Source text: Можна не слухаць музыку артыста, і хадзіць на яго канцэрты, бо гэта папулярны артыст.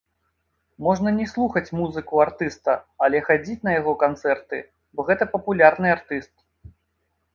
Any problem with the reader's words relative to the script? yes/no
yes